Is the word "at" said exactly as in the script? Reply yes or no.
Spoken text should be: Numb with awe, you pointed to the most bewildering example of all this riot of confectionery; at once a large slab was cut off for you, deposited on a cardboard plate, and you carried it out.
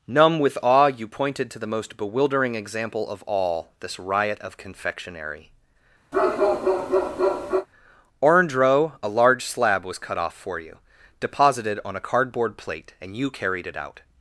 no